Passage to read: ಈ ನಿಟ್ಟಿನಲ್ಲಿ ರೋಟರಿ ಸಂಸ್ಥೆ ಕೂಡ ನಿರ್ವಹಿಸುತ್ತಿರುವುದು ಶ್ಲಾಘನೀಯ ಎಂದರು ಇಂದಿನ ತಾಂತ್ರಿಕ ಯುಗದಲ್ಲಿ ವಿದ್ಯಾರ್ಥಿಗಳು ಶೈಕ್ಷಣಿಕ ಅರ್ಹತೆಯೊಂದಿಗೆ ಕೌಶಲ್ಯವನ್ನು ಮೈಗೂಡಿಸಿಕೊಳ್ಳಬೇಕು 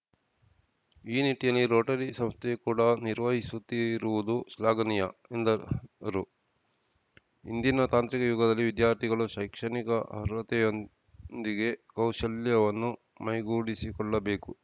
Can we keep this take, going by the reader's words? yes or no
yes